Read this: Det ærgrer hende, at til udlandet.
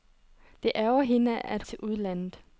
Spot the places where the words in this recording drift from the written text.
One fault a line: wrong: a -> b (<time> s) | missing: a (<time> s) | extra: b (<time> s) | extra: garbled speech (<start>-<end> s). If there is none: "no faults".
no faults